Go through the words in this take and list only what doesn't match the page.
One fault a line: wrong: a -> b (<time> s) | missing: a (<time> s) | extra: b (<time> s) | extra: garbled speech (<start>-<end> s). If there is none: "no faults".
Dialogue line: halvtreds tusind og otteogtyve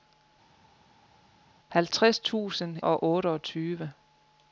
no faults